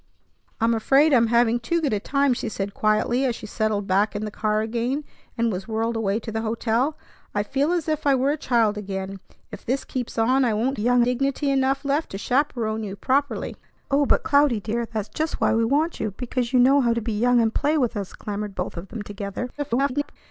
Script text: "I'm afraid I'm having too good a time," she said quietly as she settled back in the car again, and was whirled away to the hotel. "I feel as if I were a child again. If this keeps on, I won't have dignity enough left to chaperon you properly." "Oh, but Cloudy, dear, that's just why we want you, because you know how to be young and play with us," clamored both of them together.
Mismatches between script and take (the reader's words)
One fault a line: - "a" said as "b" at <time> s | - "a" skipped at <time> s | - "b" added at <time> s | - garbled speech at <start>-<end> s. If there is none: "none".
- "have" said as "young" at 10.8 s
- garbled speech at 19.6-20.2 s